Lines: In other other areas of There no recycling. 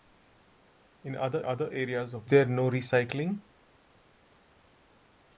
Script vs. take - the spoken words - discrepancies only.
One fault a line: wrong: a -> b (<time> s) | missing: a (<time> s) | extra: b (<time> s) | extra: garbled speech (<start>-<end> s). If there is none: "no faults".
no faults